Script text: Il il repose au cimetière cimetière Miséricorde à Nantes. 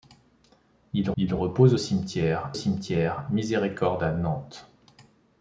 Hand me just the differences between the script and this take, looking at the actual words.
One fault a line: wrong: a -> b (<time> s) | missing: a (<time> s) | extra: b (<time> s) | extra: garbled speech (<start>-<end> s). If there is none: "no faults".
no faults